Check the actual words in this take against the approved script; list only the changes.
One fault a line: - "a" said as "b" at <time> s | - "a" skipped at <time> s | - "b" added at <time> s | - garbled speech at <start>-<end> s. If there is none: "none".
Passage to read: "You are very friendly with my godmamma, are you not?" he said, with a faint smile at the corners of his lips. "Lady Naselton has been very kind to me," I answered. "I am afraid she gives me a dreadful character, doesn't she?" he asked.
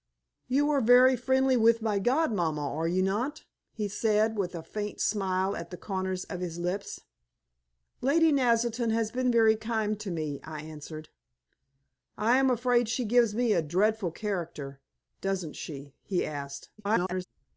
- garbled speech at 16.8-17.3 s